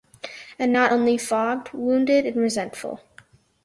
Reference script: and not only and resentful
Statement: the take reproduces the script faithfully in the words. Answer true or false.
false